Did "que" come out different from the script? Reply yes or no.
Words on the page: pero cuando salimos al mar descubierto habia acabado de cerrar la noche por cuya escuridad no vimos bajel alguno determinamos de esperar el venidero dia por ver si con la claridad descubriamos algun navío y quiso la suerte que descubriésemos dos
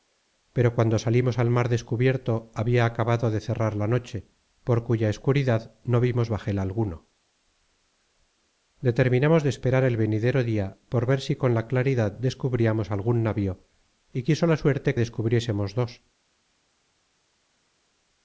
yes